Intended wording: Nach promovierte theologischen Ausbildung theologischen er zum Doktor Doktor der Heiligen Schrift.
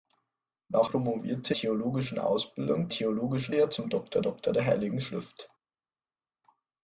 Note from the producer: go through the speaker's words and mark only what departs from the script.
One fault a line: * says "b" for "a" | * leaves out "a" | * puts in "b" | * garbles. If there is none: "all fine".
all fine